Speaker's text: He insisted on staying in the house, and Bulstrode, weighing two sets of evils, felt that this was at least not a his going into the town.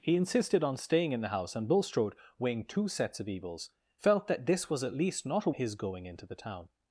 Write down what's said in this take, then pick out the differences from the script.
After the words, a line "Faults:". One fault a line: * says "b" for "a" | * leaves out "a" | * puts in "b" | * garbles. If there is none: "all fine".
He insisted on staying in the house, and Bulstrode, weighing two sets of evils, felt that this was at least not a his going into the town.
Faults:
all fine